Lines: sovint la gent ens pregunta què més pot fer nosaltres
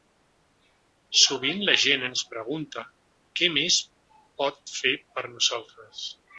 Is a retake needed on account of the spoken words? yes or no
yes